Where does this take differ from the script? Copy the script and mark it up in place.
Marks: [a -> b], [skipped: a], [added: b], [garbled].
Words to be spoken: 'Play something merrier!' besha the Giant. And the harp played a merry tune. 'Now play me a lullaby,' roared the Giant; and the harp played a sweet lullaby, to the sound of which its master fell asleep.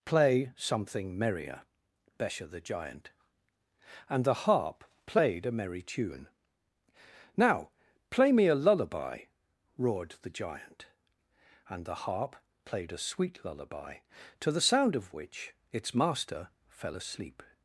'Play something merrier!' besha the Giant. And the harp played a merry tune. 'Now play me a lullaby,' roared the Giant; and the harp played a sweet lullaby, to the sound of which its master fell asleep.